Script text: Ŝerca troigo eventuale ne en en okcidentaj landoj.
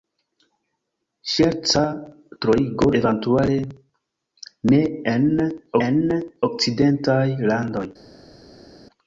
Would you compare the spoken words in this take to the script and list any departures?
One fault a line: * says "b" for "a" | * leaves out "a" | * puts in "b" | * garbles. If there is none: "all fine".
all fine